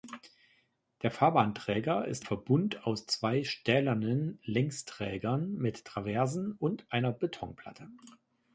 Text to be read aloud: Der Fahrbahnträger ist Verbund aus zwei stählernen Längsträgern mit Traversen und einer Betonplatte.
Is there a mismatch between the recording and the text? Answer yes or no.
no